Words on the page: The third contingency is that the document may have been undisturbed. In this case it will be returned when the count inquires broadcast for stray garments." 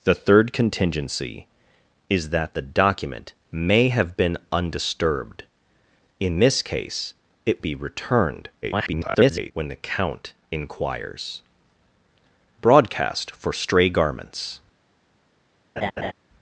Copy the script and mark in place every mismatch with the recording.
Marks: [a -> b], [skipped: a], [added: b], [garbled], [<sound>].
The third contingency is that the document may have been undisturbed. In this case it [skipped: will] be returned [garbled] when the count inquires broadcast for stray garments." [laugh]